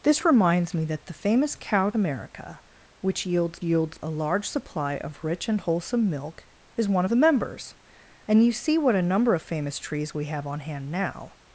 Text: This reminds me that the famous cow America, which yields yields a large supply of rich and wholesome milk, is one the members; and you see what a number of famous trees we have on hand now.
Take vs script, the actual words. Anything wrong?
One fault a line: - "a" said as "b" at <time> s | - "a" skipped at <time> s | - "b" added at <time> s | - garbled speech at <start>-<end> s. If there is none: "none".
none